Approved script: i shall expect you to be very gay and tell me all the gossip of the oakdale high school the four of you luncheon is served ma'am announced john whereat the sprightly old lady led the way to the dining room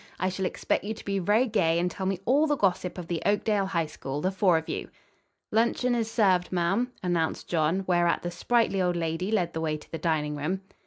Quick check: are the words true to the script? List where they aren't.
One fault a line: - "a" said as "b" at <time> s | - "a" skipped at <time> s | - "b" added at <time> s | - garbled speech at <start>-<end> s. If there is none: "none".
none